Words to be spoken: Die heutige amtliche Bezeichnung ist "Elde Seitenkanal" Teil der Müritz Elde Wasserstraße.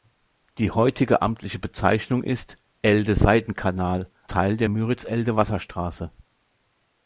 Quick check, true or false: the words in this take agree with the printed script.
true